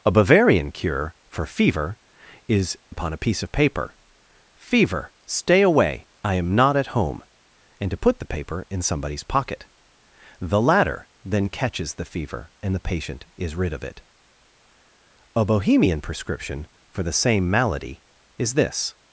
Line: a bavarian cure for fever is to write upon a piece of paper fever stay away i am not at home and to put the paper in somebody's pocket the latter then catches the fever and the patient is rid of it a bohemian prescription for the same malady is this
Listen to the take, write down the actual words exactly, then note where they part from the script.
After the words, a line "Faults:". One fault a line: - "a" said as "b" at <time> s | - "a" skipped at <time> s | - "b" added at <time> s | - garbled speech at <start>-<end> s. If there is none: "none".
a bavarian cure for fever is upon a piece of paper fever stay away i am not at home and to put the paper in somebody's pocket the latter then catches the fever and the patient is rid of it a bohemian prescription for the same malady is this
Faults:
- "to write" skipped at 2.8 s